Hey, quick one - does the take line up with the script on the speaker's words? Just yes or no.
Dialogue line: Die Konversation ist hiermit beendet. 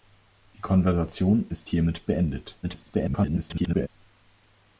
no